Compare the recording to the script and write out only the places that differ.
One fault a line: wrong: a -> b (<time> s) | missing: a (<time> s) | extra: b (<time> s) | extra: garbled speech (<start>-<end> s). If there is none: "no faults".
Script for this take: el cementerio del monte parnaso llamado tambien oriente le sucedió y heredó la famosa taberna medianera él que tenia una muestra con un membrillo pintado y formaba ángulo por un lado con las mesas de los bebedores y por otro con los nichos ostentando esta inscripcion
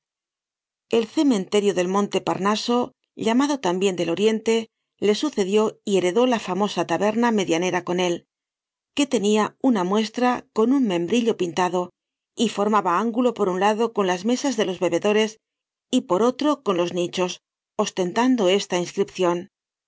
extra: del (4.0 s)
extra: con (7.8 s)